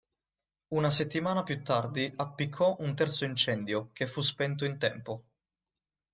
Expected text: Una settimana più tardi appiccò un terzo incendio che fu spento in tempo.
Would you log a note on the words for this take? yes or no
no